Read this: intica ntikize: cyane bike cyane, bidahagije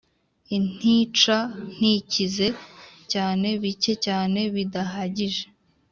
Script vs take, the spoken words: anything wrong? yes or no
no